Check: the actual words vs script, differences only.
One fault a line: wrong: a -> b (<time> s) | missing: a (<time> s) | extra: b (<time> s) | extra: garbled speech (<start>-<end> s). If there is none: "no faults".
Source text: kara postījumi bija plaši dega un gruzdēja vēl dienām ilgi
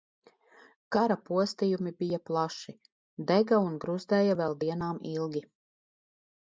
no faults